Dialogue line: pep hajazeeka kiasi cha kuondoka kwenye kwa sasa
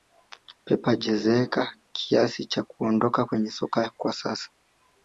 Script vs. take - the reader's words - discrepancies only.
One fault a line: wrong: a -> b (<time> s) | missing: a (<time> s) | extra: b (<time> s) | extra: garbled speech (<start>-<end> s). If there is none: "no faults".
extra: soka (3.5 s)